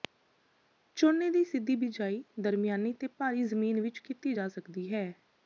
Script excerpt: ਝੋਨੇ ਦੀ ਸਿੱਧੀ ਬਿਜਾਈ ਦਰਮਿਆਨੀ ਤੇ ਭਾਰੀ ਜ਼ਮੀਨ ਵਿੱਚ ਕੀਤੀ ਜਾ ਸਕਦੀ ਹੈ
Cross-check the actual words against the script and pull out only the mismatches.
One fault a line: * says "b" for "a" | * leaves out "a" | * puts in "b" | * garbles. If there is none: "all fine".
all fine